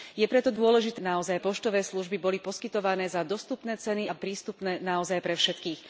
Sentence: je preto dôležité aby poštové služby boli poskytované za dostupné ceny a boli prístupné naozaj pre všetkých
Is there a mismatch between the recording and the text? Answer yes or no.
yes